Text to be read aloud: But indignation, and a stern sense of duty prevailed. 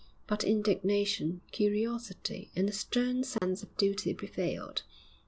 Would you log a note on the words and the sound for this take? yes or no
yes